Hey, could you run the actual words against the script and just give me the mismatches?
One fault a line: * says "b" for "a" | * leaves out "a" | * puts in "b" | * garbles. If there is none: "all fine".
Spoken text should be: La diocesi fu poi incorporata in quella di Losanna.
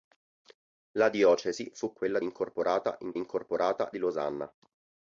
* says "quella" for "poi"
* says "incorporata" for "quella"